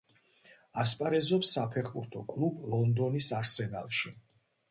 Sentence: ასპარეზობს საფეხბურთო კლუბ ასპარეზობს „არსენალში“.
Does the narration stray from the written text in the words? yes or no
yes